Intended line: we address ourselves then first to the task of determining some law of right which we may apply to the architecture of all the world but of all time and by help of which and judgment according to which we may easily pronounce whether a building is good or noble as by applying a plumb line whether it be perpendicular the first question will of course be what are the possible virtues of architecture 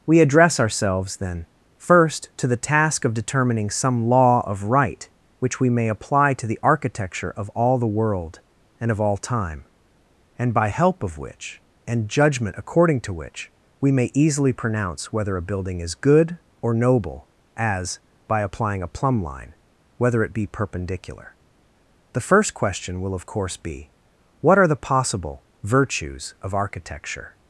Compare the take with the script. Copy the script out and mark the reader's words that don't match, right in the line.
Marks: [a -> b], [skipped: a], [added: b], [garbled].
we address ourselves then first to the task of determining some law of right which we may apply to the architecture of all the world [but -> and] of all time and by help of which and judgment according to which we may easily pronounce whether a building is good or noble as by applying a plumb line whether it be perpendicular the first question will of course be what are the possible virtues of architecture